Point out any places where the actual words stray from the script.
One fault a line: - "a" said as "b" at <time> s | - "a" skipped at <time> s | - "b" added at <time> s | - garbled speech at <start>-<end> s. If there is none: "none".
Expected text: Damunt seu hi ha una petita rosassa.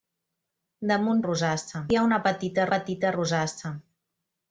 - "seu" said as "rosassa" at 1.2 s
- "petita" added at 2.7 s